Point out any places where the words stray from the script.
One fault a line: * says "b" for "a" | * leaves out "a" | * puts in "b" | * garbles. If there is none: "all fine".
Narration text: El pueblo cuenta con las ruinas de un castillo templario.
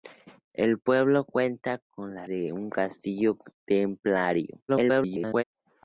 * leaves out "ruinas"
* garbles